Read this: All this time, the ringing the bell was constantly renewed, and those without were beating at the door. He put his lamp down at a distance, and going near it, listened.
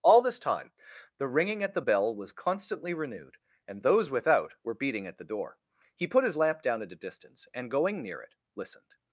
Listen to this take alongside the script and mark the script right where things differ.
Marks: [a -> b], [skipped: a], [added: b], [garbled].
All this time, the ringing [added: at] the bell was constantly renewed, and those without were beating at the door. He put his lamp down at a distance, and going near it, listened.